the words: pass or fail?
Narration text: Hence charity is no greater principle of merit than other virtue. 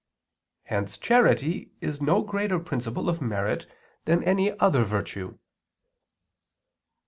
fail